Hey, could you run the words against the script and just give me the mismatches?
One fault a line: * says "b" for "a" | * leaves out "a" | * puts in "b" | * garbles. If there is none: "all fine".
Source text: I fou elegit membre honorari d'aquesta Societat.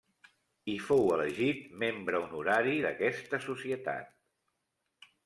all fine